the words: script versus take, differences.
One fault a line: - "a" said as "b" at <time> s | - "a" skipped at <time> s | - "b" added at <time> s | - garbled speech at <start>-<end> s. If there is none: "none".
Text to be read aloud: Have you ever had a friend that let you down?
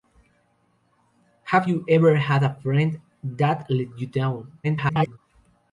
- garbled speech at 4.6-5.2 s